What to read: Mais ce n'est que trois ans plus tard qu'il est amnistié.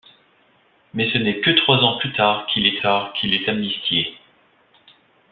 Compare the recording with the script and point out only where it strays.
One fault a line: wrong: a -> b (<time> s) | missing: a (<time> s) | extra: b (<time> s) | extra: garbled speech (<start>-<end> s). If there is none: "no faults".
extra: tard qu'il est (2.8 s)